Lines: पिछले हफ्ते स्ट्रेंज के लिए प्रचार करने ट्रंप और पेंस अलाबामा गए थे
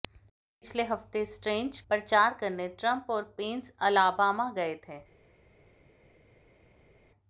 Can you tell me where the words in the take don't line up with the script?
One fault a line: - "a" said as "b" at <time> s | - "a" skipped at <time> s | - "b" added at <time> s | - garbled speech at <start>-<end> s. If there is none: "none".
- "के लिए" skipped at 1.8 s